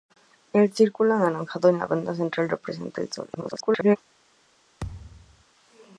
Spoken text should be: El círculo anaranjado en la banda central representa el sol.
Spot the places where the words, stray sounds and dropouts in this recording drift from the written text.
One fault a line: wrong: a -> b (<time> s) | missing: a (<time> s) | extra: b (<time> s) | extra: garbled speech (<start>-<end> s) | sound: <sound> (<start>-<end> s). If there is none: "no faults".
extra: garbled speech (3.3-4.0 s)
sound: thud (4.8-5.4 s)